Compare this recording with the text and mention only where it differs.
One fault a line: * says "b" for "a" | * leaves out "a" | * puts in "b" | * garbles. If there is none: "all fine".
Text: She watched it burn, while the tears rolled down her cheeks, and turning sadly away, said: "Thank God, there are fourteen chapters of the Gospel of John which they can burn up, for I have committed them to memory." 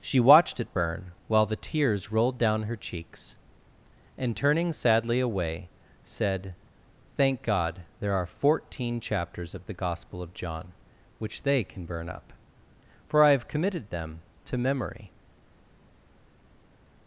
all fine